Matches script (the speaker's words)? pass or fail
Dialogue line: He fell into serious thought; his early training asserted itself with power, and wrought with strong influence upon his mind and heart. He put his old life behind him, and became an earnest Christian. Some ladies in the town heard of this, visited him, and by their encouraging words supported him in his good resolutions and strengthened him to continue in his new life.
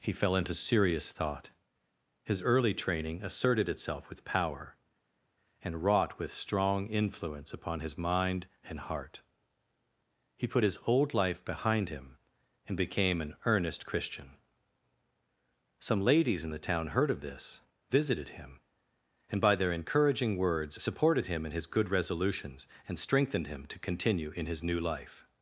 pass